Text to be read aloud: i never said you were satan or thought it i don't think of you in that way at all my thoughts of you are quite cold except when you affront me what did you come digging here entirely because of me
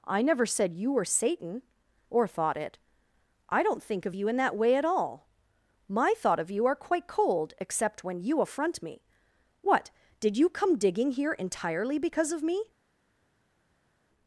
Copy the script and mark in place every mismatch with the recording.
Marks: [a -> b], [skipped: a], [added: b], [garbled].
i never said you were satan or thought it i don't think of you in that way at all my [thoughts -> thought] of you are quite cold except when you affront me what did you come digging here entirely because of me